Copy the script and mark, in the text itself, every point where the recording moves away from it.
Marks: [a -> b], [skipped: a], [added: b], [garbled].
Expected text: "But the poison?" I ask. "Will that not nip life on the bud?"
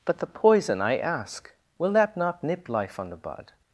"But the poison?" I ask. "Will that not nip life on the bud?"